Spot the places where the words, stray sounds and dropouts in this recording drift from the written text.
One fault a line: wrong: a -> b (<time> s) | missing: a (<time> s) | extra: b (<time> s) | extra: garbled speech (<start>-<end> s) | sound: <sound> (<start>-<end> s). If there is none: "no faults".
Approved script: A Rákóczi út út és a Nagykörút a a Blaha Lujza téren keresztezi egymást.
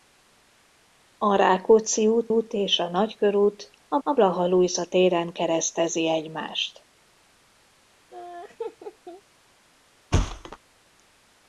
sound: laugh (8.1-9.2 s)
sound: thud (10.1-10.6 s)